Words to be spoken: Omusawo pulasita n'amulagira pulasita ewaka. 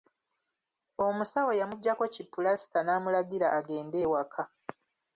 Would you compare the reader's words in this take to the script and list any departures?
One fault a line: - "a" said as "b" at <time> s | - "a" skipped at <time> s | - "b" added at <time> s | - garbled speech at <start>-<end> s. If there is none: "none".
- "yamuggyako ki" added at 1.6 s
- "pulasita" said as "agende" at 3.6 s